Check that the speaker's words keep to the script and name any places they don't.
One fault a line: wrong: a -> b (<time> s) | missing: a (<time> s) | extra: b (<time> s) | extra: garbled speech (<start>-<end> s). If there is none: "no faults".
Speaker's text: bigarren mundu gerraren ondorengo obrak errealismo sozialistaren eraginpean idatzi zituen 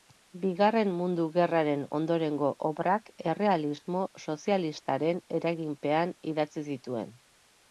no faults